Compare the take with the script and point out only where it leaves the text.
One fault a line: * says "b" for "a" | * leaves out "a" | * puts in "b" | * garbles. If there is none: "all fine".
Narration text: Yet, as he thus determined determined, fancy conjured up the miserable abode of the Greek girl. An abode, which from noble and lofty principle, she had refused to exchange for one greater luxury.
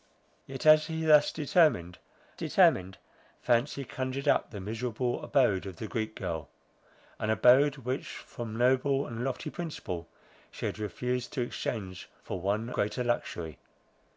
all fine